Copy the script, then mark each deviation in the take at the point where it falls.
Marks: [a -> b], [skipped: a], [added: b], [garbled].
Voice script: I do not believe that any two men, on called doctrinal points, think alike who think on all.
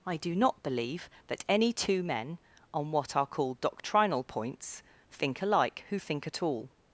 I do not believe that any two men, on [added: what are] called doctrinal points, think alike who think [on -> at] all.